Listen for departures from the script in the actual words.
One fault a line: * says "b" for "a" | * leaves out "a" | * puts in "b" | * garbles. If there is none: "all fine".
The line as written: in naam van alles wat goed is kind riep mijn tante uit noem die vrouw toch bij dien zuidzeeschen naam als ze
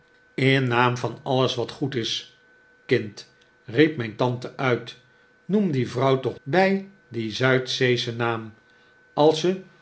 all fine